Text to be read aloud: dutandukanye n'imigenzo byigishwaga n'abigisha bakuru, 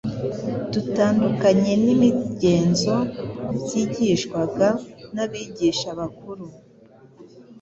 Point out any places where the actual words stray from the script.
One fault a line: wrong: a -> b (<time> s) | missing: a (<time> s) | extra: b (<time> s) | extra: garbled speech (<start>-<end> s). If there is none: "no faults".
no faults